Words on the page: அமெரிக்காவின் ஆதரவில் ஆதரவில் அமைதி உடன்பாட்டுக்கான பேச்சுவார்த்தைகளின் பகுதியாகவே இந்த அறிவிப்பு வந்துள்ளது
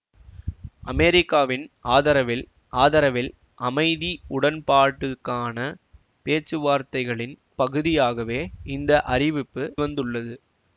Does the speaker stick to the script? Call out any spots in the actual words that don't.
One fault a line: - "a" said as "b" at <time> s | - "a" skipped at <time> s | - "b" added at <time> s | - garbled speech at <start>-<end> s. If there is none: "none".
none